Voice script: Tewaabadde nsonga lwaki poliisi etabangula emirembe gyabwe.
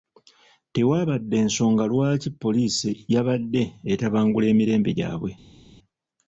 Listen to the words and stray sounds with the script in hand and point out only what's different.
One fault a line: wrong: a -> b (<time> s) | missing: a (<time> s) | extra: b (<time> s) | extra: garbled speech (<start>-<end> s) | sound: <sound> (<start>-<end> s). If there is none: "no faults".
extra: yabadde (3.1 s)